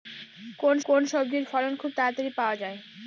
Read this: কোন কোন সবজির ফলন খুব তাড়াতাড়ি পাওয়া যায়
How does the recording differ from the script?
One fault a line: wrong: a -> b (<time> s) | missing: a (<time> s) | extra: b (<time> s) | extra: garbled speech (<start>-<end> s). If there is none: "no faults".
no faults